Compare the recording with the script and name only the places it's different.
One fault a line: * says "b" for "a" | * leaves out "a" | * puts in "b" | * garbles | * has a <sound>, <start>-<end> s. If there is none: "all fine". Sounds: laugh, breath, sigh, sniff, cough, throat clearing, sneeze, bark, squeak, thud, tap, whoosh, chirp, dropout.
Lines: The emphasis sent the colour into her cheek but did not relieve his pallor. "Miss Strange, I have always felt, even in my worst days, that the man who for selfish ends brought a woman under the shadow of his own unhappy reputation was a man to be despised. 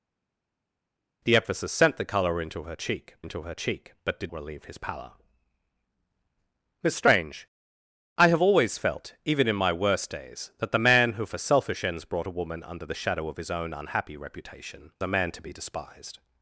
* puts in "into her cheek"
* leaves out "not"
* leaves out "was"